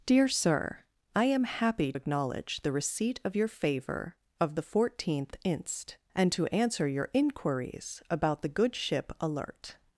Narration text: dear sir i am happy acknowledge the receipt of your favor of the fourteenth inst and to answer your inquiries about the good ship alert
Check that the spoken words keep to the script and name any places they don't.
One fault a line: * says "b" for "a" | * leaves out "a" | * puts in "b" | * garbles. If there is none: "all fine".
all fine